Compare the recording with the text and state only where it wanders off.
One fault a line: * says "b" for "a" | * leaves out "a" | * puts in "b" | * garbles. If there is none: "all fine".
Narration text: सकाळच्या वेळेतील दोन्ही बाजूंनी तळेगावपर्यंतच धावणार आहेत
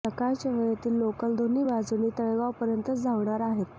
* puts in "लोकल"